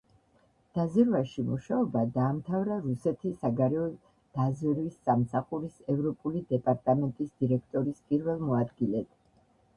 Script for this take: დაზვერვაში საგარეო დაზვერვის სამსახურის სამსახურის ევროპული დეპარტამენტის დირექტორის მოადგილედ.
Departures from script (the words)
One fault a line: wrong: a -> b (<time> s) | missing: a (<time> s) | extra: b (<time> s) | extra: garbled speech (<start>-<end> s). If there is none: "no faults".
extra: მუშაობა დაამთავრა რუსეთის (1.5 s)
missing: სამსახურის (5.8 s)
extra: პირველ (8.1 s)